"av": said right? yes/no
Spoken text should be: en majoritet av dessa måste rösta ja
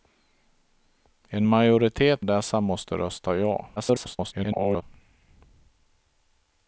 no